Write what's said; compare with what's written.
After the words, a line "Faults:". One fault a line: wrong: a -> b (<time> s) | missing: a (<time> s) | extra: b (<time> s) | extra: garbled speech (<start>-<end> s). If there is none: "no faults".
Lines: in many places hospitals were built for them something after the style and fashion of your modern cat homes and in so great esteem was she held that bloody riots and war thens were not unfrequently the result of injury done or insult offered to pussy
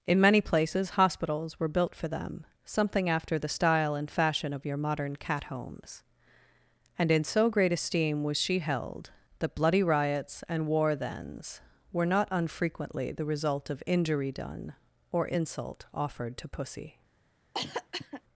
in many places hospitals were built for them something after the style and fashion of your modern cat homes and in so great esteem was she held that bloody riots and war thens were not unfrequently the result of injury done or insult offered to pussy
Faults:
no faults